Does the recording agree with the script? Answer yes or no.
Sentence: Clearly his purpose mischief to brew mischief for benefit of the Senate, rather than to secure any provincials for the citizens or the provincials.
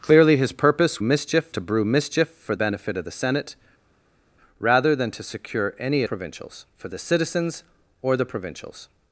yes